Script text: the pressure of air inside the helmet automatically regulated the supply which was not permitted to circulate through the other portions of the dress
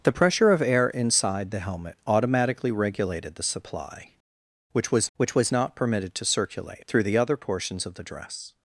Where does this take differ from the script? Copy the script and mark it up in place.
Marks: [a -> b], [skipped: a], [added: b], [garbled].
the pressure of air inside the helmet automatically regulated the supply which was [added: which was] not permitted to circulate through the other portions of the dress